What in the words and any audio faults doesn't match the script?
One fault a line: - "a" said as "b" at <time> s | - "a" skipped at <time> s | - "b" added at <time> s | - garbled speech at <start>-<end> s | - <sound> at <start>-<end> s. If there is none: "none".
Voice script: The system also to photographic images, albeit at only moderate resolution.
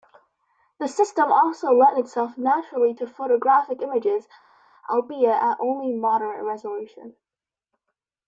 - "lent itself naturally" added at 1.7 s